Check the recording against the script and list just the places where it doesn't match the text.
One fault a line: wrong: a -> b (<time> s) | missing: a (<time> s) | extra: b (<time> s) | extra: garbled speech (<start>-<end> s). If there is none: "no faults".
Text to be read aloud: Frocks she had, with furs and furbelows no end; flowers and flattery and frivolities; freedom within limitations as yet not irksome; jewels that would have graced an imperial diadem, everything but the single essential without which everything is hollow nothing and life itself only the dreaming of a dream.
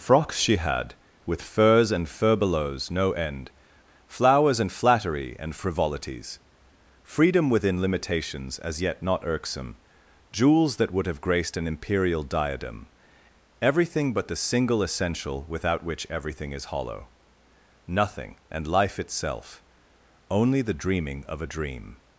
no faults